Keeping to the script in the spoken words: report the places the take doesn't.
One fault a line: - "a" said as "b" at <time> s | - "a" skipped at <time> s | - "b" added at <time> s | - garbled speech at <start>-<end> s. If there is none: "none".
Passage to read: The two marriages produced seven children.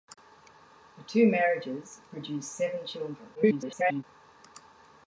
- garbled speech at 3.3-4.0 s